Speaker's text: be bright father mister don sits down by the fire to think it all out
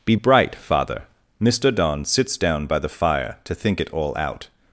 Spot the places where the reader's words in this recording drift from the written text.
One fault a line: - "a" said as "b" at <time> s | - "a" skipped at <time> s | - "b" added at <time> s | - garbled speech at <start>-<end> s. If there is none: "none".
none